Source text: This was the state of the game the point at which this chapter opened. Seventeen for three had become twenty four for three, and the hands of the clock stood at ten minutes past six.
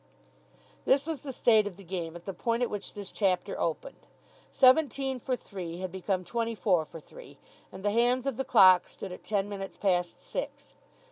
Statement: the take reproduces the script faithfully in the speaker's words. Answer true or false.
false